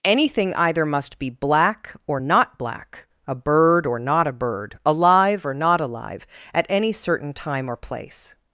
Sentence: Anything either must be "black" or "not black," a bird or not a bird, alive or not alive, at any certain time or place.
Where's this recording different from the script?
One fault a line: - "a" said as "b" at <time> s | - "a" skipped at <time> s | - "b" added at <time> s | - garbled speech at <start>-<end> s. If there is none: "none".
none